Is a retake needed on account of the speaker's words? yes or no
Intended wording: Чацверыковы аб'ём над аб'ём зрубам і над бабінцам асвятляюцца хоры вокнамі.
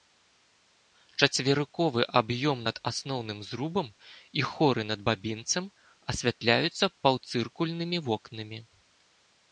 yes